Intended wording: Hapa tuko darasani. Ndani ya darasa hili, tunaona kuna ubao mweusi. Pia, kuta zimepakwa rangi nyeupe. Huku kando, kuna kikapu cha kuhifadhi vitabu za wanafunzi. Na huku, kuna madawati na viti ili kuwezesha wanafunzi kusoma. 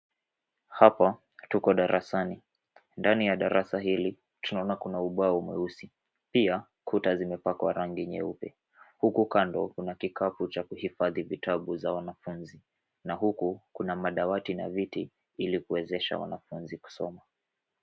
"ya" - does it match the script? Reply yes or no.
yes